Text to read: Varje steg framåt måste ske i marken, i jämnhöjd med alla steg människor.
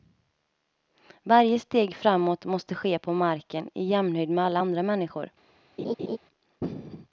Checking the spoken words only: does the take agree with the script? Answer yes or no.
no